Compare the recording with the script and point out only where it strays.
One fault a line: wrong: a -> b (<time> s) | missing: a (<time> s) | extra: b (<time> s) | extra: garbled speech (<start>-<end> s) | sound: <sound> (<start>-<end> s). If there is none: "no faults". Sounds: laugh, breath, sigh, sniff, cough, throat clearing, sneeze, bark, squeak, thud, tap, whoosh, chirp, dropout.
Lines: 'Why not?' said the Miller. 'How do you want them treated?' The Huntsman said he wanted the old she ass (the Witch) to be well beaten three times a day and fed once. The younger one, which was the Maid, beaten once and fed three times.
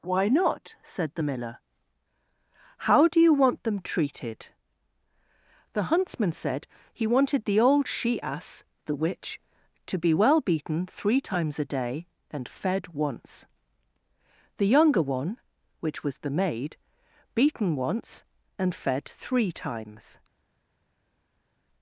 no faults